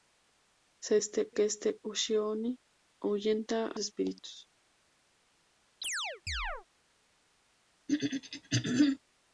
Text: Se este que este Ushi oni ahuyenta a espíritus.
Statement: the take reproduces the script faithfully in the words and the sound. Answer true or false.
false